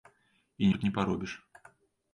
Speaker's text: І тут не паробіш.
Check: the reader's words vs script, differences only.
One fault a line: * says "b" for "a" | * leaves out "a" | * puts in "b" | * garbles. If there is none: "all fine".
all fine